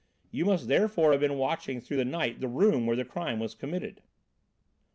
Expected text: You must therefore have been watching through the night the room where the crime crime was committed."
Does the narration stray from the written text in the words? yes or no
yes